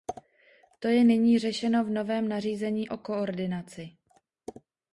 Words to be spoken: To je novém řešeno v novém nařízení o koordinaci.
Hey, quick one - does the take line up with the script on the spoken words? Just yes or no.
no